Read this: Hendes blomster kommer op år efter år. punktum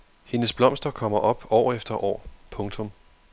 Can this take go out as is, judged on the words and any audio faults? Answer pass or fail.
pass